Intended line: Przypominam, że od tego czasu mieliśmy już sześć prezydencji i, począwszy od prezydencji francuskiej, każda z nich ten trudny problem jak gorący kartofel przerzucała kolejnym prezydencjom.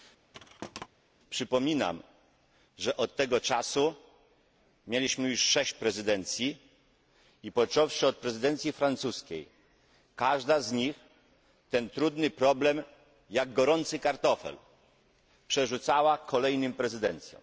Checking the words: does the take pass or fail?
pass